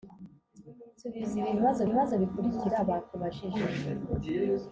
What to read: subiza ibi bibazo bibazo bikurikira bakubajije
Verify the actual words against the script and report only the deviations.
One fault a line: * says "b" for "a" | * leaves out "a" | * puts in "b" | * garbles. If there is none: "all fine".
all fine